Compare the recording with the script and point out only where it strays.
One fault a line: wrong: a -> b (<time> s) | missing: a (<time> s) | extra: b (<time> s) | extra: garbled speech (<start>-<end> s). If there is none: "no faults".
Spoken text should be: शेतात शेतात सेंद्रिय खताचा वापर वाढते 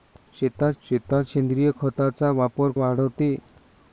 no faults